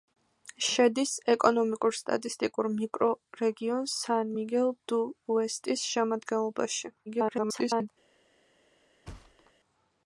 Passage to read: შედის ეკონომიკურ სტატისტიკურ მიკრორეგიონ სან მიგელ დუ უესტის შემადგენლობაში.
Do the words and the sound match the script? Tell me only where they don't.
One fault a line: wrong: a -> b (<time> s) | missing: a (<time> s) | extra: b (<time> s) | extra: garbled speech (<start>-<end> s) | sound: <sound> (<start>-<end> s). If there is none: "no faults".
extra: garbled speech (7.1-7.9 s)
sound: thud (9.1-9.5 s)